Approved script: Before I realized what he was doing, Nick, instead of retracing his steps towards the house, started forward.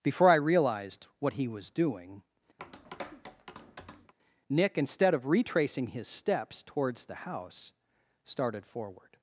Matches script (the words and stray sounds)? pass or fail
fail